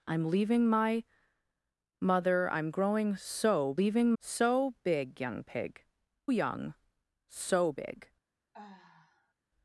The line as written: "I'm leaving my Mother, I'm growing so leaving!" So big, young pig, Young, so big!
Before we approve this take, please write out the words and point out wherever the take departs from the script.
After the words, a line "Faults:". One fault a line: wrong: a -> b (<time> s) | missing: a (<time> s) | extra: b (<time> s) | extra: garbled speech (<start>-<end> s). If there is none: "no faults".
"I'm leaving my Mother, I'm growing so leaving!" So big, young pig, Young, so big!
Faults:
no faults